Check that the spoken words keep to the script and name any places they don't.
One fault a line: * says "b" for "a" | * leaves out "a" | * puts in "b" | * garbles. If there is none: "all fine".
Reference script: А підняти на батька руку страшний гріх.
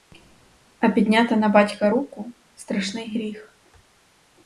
all fine